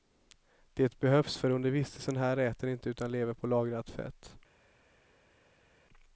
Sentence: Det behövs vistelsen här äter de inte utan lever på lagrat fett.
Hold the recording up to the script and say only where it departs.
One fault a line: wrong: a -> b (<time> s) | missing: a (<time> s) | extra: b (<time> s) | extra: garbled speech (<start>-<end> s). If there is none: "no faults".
extra: för under (1.4 s)